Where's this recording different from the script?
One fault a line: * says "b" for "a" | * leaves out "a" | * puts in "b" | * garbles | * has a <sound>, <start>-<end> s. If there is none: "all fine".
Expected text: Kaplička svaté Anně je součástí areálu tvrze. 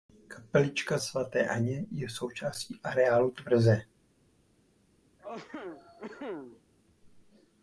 * has a cough, 5.2-6.6 s